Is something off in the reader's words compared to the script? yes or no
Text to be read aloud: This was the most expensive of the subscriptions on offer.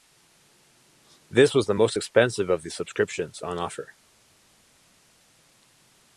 no